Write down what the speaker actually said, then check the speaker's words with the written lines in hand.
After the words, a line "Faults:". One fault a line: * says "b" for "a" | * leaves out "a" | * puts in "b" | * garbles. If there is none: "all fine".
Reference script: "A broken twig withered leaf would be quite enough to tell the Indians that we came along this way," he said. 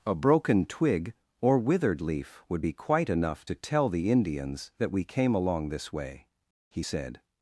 "A broken twig or withered leaf would be quite enough to tell the Indians that we came along this way," he said.
Faults:
* puts in "or"